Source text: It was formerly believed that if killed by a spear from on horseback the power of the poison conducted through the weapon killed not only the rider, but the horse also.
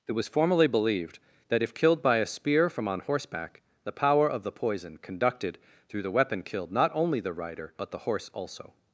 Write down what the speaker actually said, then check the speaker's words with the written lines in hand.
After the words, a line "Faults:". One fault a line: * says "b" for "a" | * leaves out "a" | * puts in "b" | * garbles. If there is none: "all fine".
It was formerly believed that if killed by a spear from on horseback the power of the poison conducted through the weapon killed not only the rider, but the horse also.
Faults:
all fine